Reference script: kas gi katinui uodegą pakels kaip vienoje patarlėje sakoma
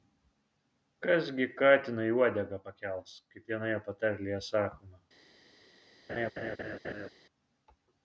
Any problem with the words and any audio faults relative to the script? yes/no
yes